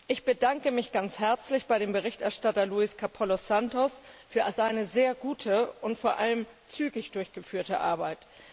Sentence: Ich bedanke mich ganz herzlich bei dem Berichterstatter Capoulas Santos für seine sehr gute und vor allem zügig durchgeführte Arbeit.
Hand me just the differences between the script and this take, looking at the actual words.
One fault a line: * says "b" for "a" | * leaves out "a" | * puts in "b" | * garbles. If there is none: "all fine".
* puts in "Luis"